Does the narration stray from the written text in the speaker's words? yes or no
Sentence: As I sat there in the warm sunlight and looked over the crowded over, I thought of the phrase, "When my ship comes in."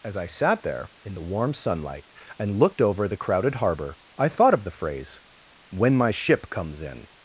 yes